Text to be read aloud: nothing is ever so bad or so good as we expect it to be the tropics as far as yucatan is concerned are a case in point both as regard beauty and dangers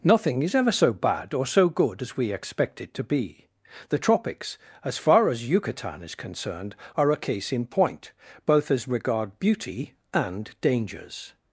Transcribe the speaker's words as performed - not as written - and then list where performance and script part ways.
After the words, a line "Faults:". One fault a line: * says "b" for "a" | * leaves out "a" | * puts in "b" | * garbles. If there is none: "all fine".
nothing is ever so bad or so good as we expect it to be the tropics as far as yucatan is concerned are a case in point both as regard beauty and dangers
Faults:
all fine